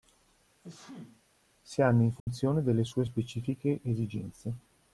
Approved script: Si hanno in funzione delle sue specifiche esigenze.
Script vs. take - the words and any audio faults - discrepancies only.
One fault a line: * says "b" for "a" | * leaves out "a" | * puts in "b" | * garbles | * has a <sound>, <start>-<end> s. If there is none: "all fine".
* has a sneeze, 0.6-1.2 s
* has a dropout, 2.2-2.3 s